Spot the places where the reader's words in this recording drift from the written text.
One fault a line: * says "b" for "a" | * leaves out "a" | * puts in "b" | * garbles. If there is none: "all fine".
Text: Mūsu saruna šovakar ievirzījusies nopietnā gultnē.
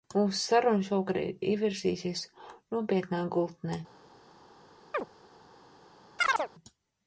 all fine